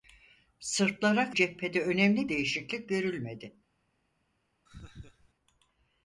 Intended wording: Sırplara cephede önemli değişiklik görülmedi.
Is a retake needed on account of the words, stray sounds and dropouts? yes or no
yes